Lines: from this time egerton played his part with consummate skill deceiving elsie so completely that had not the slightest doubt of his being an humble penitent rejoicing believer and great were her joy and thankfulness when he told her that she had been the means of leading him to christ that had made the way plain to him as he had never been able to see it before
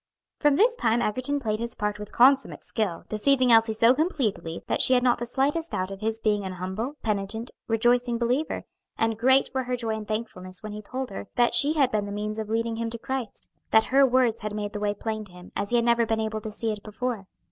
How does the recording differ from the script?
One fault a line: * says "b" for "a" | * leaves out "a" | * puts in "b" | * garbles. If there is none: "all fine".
* puts in "she"
* puts in "her words"